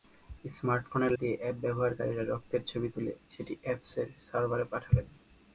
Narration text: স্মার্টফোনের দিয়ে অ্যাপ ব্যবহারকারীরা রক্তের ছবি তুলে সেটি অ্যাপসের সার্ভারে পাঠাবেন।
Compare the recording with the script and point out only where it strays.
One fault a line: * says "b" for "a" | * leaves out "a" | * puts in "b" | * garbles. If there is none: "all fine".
all fine